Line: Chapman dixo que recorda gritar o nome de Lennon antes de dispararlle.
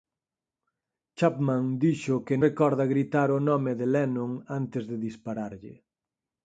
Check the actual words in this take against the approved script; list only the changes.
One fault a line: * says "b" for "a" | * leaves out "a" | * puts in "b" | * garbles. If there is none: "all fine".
all fine